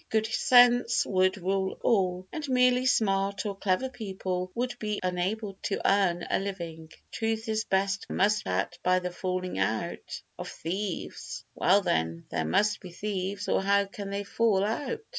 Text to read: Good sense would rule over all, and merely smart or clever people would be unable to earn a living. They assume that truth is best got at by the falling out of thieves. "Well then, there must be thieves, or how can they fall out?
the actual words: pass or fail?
fail